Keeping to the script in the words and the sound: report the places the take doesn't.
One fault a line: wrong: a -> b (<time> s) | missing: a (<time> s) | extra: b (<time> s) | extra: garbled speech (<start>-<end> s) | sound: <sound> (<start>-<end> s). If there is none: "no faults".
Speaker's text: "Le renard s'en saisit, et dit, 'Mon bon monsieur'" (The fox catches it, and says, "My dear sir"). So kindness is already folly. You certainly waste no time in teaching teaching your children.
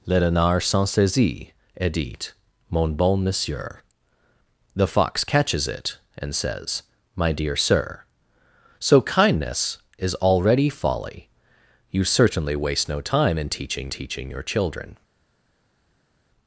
no faults